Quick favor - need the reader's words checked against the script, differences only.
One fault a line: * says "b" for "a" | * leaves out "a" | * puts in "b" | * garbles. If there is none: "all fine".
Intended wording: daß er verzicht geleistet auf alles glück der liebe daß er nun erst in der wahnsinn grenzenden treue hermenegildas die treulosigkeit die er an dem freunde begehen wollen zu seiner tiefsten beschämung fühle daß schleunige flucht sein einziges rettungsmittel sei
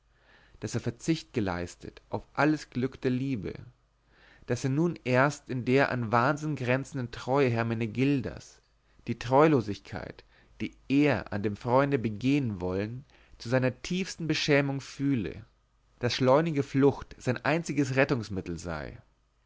* puts in "an"